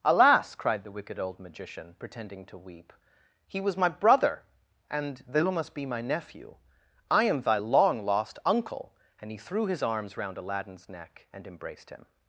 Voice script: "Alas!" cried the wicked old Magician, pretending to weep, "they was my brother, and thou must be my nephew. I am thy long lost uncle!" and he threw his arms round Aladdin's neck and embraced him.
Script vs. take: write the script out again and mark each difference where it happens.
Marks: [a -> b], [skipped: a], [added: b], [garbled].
"Alas!" cried the wicked old Magician, pretending to weep, ["they -> he] was my brother, and thou must be my nephew. I am thy long lost uncle!" and he threw his arms round Aladdin's neck and embraced him.